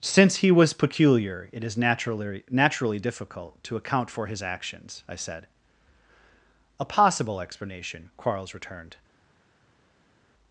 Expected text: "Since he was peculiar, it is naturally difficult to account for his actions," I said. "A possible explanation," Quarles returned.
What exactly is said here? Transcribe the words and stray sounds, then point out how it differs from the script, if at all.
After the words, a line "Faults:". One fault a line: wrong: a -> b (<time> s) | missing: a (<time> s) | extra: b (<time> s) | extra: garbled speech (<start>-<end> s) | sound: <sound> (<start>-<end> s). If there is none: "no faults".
"Since he was peculiar, it is naturally naturally difficult to account for his actions," I said. "A possible explanation," Quarles returned.
Faults:
extra: naturally (2.5 s)